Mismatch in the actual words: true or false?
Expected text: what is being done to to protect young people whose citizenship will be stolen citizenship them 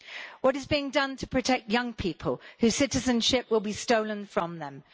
true